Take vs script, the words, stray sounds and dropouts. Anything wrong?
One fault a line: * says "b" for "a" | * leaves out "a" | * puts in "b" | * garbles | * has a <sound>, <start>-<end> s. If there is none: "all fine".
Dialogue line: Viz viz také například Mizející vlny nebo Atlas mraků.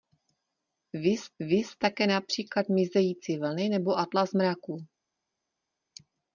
all fine